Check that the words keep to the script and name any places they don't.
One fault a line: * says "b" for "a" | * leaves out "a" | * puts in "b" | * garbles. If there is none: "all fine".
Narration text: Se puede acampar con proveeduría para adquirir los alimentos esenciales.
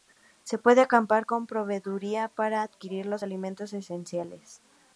all fine